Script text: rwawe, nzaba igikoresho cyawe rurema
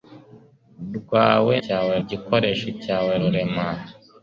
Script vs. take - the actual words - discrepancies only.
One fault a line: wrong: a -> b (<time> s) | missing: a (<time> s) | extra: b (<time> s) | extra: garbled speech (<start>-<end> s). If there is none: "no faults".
wrong: nzaba -> cyawe (1.6 s)